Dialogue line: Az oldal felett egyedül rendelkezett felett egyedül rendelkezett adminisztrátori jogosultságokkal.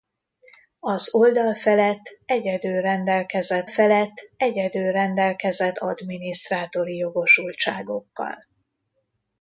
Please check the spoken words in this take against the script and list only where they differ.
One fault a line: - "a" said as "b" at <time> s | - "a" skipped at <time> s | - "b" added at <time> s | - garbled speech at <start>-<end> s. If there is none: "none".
none